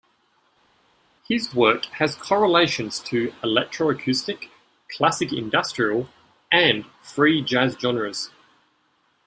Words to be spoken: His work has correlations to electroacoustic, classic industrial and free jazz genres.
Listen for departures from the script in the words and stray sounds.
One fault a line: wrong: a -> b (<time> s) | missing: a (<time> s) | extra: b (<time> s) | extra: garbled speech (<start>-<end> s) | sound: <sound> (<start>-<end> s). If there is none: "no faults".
no faults